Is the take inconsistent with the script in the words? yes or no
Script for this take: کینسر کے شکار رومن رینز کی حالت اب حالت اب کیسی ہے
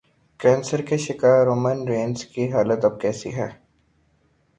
yes